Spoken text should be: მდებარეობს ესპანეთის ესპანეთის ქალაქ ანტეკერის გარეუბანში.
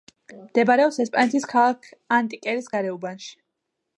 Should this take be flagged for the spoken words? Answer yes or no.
yes